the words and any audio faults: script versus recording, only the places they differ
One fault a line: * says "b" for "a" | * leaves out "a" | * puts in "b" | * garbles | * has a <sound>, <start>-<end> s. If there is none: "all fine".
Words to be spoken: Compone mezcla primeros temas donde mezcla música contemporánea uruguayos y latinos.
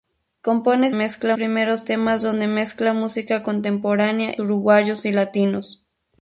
all fine